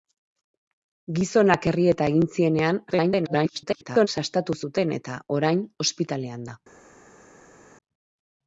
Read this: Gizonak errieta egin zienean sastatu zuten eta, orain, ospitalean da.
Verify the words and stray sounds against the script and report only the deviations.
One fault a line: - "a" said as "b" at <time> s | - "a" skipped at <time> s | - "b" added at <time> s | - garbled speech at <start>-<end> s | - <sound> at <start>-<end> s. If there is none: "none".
- garbled speech at 2.9-4.1 s